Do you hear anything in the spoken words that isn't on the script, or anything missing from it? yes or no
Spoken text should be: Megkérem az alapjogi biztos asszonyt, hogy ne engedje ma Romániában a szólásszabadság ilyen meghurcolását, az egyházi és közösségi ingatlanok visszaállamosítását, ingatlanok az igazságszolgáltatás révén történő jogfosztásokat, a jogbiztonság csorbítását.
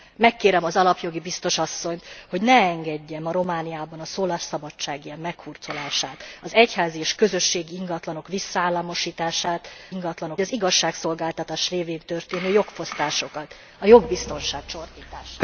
no